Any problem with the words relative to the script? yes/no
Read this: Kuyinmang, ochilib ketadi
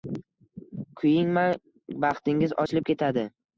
yes